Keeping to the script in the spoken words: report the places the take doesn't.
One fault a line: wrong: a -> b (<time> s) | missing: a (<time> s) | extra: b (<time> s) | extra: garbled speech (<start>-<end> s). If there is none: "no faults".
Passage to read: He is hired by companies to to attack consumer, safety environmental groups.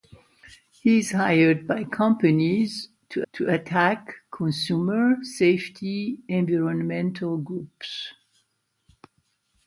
no faults